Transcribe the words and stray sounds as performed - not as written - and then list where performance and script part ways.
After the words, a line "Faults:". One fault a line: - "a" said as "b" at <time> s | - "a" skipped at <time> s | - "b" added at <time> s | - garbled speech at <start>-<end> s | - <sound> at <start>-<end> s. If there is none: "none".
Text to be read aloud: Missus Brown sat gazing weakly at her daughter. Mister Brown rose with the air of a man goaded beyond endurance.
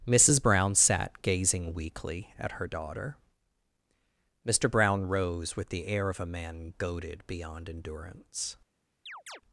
Missus Brown sat gazing weakly at her daughter. Mister Brown rose with the air of a man goaded beyond endurance.
Faults:
- chirp at 9.1-9.4 s